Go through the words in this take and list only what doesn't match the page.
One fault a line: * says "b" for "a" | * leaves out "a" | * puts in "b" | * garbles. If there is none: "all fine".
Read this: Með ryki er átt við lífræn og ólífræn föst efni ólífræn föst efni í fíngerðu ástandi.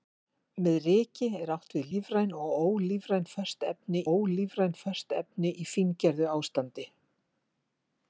all fine